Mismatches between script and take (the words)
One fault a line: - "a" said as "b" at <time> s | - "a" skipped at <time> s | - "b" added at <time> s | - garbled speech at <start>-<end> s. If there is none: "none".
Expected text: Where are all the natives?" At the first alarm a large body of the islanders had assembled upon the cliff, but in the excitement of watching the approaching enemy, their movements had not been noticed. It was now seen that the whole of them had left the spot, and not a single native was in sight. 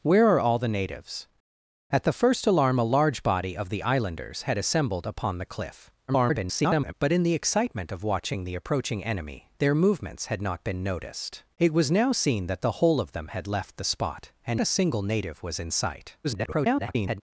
- garbled speech at 6.1-6.9 s
- "not" skipped at 14.6 s
- garbled speech at 16.2-17.2 s